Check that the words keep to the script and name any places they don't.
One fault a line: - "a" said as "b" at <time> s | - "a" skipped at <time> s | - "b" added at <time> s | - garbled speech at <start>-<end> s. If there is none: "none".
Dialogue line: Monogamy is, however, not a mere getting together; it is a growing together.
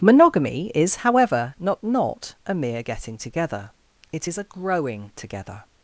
- "not" added at 1.8 s